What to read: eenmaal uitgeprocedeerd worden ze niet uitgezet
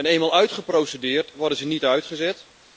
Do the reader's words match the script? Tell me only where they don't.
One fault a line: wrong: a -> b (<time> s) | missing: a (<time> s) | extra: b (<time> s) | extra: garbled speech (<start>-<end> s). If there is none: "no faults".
no faults